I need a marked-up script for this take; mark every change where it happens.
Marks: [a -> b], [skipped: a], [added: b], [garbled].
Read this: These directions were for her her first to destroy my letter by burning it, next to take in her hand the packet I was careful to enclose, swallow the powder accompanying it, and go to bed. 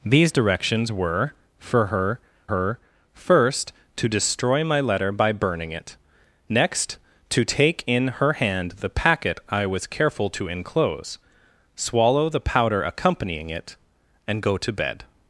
These directions were for her her first to destroy my letter by burning it, next to take in her hand the packet I was careful to enclose, swallow the powder accompanying it, and go to bed.